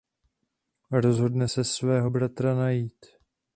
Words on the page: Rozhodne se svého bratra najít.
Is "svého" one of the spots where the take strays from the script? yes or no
no